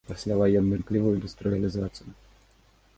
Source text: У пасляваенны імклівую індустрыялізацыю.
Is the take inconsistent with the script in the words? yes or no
no